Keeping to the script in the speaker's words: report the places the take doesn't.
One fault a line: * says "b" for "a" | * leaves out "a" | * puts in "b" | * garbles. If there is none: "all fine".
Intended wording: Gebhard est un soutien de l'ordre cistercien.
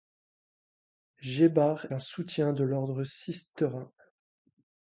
* leaves out "est"